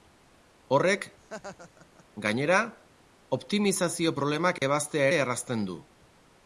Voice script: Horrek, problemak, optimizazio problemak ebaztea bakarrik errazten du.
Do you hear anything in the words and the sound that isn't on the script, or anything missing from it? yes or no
yes